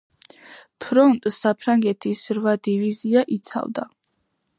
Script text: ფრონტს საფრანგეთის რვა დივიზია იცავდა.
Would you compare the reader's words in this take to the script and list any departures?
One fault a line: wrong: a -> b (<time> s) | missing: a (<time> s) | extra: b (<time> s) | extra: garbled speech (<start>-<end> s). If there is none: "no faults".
no faults